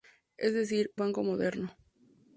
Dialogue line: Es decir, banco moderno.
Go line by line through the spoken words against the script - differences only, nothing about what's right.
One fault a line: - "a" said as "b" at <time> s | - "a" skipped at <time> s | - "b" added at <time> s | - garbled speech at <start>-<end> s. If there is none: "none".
none